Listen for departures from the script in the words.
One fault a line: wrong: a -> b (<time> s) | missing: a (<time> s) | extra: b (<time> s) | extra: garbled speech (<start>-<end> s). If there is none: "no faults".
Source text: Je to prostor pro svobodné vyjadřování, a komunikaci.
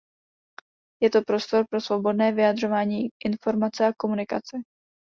extra: informace (3.2 s)